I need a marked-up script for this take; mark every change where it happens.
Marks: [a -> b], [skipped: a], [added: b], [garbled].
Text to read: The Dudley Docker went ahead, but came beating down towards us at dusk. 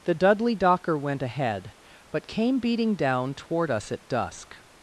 The Dudley Docker went ahead, but came beating down [towards -> toward] us at dusk.